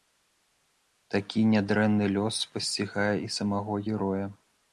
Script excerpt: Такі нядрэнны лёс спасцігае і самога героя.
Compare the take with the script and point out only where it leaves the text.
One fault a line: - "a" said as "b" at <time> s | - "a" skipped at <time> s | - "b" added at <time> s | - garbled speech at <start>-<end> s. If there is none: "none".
none